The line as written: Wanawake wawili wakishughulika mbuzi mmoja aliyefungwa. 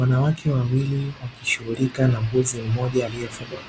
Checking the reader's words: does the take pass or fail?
fail